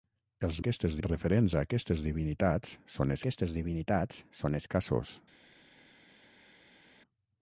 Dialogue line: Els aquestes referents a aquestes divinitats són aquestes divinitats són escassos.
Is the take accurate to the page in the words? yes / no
yes